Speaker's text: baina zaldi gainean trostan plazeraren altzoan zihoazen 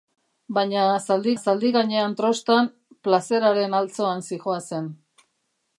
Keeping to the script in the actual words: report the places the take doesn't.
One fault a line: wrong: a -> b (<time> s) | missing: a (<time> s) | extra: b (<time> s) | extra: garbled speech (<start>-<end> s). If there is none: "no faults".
extra: zaldi (1.4 s)